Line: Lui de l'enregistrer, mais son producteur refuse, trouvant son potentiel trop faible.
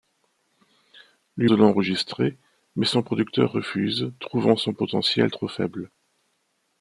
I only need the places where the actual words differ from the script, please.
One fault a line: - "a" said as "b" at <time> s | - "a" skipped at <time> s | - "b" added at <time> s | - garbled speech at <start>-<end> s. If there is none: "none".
none